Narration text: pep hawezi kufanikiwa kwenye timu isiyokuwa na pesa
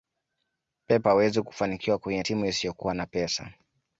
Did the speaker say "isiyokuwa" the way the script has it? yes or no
yes